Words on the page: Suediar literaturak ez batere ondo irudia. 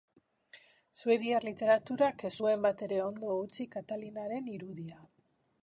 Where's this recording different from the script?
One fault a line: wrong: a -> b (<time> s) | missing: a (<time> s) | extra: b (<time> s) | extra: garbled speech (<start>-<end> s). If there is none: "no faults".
extra: zuen (2.4 s)
extra: utzi Katalinaren (3.5 s)